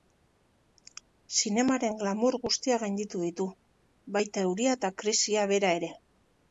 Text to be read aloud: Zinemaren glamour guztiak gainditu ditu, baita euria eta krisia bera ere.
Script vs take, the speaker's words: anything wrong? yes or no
no